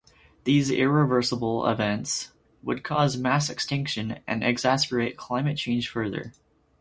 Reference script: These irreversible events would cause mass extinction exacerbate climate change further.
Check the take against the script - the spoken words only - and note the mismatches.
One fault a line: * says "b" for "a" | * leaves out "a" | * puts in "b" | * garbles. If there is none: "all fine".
* puts in "and"